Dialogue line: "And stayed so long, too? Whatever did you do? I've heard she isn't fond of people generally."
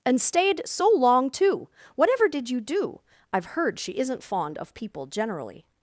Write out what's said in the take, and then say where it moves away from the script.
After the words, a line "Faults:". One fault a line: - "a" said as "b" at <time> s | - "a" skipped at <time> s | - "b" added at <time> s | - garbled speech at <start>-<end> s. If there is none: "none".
"And stayed so long, too? Whatever did you do? I've heard she isn't fond of people generally."
Faults:
none